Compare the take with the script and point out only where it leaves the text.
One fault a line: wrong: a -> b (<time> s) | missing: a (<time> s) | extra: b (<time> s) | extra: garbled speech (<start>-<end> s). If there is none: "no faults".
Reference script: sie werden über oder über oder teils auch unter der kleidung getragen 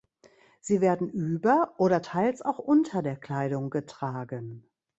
missing: über oder (2.0 s)